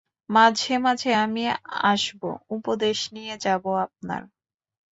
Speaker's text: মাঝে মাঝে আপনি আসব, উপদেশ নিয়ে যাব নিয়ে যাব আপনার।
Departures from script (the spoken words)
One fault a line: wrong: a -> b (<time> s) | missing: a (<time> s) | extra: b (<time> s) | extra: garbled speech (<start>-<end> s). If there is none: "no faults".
wrong: আপনি -> আমি (1.2 s)
missing: নিয়ে যাব (3.6 s)